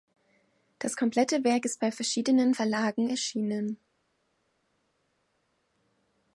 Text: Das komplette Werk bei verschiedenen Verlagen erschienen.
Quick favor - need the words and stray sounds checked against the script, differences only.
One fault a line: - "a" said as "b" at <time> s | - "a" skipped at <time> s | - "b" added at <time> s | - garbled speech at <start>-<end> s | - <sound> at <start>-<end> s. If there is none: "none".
- "ist" added at 1.6 s